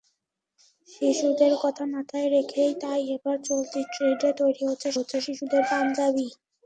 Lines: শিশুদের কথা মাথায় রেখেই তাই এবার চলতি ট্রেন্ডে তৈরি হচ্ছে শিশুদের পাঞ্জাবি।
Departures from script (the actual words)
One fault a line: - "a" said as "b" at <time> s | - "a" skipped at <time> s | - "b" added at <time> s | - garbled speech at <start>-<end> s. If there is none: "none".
- "হচ্ছে" added at 5.0 s